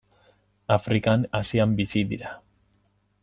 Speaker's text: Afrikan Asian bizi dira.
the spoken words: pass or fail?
pass